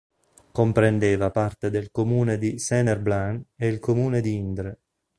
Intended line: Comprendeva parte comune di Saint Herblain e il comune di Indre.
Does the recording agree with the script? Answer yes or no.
no